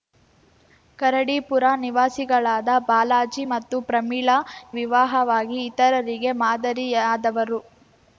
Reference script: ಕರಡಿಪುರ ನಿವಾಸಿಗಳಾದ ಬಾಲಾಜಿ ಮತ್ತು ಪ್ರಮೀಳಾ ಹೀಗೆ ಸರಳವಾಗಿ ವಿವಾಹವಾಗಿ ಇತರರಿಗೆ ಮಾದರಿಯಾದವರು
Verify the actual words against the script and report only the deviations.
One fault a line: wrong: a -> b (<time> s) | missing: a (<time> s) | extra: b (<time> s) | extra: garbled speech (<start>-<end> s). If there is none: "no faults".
missing: ಹೀಗೆ ಸರಳವಾಗಿ (4.4 s)